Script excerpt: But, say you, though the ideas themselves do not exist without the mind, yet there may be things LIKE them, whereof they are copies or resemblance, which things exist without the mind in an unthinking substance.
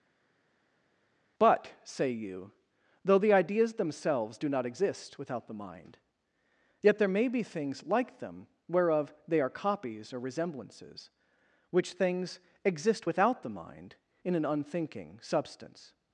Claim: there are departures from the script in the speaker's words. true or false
true